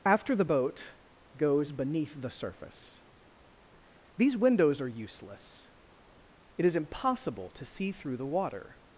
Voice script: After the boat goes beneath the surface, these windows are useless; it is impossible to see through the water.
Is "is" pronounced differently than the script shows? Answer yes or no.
no